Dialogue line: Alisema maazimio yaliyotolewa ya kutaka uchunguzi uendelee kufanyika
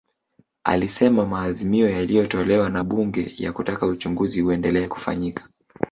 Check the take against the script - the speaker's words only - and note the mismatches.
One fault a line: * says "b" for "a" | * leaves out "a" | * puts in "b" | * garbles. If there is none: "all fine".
* puts in "na Bunge"